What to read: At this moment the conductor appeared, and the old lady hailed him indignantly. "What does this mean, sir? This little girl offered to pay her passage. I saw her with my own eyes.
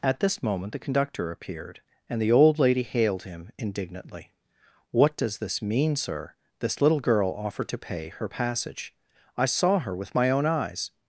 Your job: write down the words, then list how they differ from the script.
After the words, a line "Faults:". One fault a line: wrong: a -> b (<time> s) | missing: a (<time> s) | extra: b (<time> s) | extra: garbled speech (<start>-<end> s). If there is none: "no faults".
At this moment the conductor appeared, and the old lady hailed him indignantly. "What does this mean, sir? This little girl offered to pay her passage. I saw her with my own eyes.
Faults:
no faults